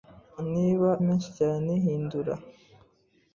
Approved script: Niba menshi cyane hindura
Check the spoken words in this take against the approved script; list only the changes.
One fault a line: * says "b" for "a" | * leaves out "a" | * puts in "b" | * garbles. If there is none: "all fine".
all fine